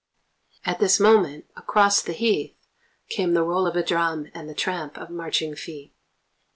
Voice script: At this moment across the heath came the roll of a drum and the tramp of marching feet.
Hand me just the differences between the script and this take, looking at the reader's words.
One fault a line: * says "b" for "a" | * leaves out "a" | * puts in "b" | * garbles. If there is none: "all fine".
all fine